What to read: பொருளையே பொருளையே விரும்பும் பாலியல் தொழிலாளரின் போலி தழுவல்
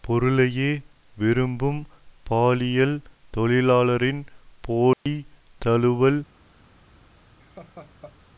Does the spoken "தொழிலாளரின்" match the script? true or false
true